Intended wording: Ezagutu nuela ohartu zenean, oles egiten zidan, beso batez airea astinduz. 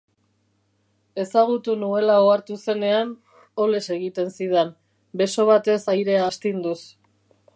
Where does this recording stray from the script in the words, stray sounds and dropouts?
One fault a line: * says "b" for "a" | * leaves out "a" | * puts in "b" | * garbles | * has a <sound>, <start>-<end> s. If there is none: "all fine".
all fine